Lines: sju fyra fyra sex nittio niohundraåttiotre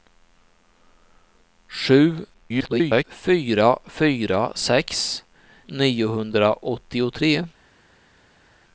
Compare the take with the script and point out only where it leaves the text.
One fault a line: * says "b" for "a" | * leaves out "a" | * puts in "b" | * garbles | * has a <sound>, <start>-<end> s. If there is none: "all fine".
* garbles
* leaves out "nittio"